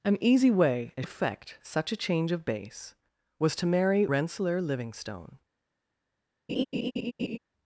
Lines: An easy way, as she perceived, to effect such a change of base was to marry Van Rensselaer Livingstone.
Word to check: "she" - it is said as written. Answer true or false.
false